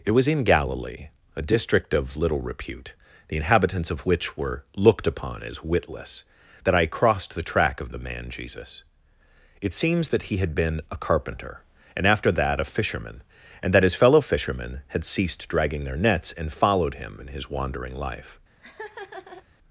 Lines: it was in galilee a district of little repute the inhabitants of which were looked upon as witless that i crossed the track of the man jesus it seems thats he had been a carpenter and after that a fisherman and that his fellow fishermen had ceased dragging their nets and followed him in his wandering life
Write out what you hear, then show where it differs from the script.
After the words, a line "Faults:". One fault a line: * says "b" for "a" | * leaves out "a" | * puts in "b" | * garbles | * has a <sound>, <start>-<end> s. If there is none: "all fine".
it was in galilee a district of little repute the inhabitants of which were looked upon as witless that i crossed the track of the man jesus it seems that he had been a carpenter and after that a fisherman and that his fellow fishermen had ceased dragging their nets and followed him in his wandering life
Faults:
* says "that" for "thats"
* has a laugh, 18.6-19.4 s